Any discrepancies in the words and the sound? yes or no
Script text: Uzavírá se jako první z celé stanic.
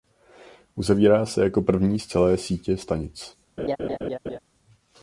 yes